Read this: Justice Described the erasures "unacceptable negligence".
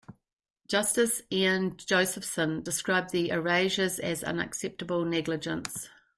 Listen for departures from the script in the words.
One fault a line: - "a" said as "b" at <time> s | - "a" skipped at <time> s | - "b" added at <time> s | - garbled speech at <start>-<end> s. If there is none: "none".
- "Ian Josephson" added at 1.3 s
- "as" added at 4.0 s